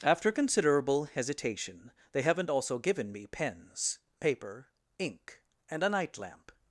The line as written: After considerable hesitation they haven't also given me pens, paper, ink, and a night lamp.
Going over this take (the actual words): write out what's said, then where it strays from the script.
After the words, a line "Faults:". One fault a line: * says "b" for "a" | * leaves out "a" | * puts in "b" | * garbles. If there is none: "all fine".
After considerable hesitation they haven't also given me pens, paper, ink, and a night lamp.
Faults:
all fine